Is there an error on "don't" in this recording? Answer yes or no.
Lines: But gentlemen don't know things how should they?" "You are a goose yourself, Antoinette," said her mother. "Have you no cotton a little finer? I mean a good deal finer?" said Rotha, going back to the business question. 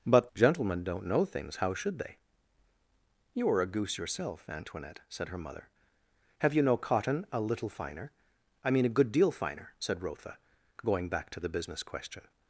no